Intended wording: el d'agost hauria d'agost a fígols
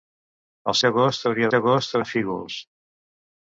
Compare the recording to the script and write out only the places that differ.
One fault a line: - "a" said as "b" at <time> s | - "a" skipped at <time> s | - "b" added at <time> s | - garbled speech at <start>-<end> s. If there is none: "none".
none